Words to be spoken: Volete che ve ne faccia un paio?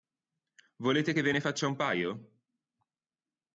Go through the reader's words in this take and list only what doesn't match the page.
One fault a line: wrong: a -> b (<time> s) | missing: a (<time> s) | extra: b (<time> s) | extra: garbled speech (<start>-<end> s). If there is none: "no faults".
no faults